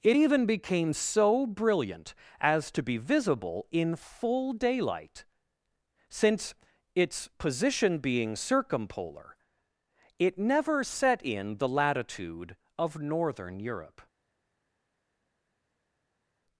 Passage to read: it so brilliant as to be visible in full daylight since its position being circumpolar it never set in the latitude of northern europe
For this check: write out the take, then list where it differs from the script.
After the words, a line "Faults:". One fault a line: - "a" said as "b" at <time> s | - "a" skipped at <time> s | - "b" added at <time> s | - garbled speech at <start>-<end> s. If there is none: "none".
it even became so brilliant as to be visible in full daylight since its position being circumpolar it never set in the latitude of northern europe
Faults:
- "even became" added at 0.1 s